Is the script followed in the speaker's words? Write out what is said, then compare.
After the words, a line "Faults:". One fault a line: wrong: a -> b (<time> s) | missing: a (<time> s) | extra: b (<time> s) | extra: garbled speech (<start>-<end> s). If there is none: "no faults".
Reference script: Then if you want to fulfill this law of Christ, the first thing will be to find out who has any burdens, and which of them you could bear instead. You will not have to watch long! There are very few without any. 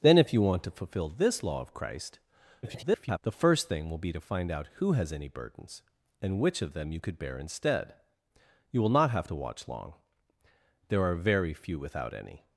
Then if you want to fulfill this law of Christ, [garbled] the first thing will be to find out who has any burdens, and which of them you could bear instead. You will not have to watch long! There are very few without any.
Faults:
extra: garbled speech (2.6-3.2 s)